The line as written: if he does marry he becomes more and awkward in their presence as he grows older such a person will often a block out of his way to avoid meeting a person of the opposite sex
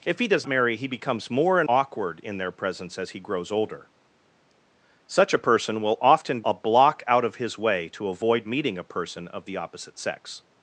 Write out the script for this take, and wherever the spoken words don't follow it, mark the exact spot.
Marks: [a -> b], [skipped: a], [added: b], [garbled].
if he does marry he becomes more and awkward in their presence as he grows older such a person will often a block out of his way to avoid meeting a person of the opposite sex